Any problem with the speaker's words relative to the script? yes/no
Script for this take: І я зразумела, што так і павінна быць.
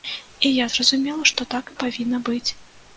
no